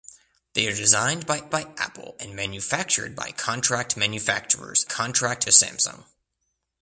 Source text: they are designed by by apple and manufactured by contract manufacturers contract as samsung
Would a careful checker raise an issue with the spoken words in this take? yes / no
no